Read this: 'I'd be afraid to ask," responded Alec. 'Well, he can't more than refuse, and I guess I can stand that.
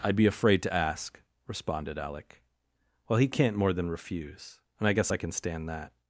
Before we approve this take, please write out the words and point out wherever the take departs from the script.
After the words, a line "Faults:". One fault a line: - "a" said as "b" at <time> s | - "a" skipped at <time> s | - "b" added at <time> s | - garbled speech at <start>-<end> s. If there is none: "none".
'I'd be afraid to ask," responded Alec. 'Well, he can't more than refuse, and I guess I can stand that.
Faults:
none